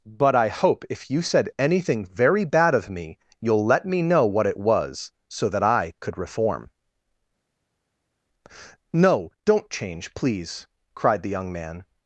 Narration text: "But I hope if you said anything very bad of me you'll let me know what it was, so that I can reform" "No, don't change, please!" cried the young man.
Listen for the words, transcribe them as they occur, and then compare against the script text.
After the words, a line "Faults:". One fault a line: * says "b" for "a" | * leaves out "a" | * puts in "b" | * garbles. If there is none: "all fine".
"But I hope if you said anything very bad of me you'll let me know what it was, so that I could reform" "No, don't change, please!" cried the young man.
Faults:
* says "could" for "can"